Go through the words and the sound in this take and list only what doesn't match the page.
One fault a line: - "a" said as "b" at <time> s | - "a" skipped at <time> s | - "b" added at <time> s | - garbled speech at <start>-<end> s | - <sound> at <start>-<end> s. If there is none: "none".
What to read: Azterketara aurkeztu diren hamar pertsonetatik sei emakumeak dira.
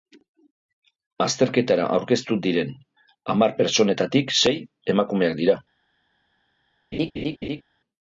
- laugh at 6.9-7.6 s